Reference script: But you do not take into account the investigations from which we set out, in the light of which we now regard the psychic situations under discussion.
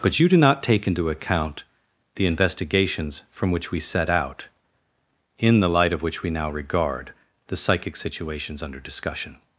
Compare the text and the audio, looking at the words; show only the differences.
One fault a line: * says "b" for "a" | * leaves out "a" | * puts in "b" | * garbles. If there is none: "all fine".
all fine